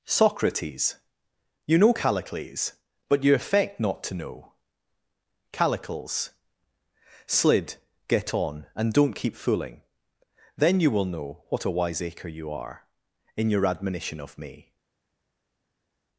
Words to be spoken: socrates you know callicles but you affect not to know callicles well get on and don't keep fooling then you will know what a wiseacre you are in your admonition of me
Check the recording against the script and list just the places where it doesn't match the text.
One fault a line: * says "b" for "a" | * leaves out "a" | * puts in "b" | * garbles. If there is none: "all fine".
* says "slid" for "well"